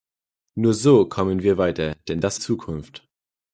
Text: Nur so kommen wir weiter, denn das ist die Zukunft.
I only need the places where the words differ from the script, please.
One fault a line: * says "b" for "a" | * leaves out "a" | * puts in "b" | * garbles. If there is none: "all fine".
* leaves out "ist die"